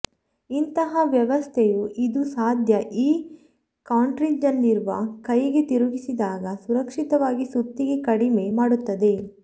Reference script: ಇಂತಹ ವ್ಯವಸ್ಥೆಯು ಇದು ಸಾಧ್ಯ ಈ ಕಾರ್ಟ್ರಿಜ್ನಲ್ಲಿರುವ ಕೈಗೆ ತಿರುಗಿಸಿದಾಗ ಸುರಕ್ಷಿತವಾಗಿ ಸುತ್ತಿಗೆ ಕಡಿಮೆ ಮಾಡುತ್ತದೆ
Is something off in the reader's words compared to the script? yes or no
no